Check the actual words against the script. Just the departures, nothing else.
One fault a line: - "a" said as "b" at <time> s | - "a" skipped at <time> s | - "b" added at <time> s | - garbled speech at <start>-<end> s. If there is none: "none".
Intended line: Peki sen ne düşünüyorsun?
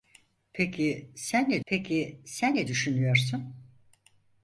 - "peki sen ne" added at 1.7 s